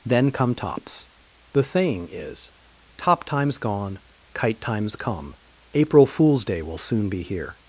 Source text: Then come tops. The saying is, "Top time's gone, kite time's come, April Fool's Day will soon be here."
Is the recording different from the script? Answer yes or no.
no